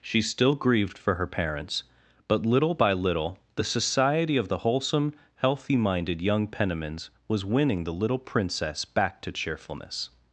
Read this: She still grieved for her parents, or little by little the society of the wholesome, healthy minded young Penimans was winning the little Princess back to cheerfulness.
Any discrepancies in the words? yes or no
yes